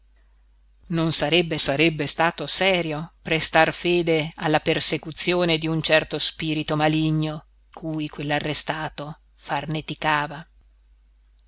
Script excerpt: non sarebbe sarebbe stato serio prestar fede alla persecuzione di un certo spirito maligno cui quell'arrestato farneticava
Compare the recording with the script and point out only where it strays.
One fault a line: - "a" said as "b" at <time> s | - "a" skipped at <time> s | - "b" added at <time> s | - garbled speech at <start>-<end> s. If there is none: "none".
none